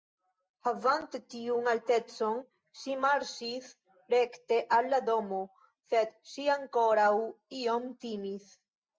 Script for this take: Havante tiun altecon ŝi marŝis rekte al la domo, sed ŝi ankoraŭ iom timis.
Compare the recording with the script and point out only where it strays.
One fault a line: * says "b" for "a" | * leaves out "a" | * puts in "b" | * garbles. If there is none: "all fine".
all fine